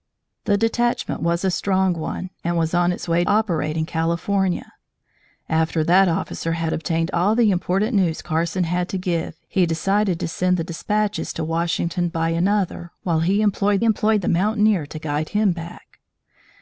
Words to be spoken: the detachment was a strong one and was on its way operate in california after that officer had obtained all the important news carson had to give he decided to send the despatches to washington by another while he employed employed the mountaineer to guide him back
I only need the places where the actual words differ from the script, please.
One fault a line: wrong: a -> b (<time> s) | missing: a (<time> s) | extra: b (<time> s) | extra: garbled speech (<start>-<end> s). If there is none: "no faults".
no faults